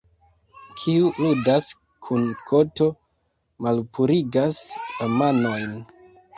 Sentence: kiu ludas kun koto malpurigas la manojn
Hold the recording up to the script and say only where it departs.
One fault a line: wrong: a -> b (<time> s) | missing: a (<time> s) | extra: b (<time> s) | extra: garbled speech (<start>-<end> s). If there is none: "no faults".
no faults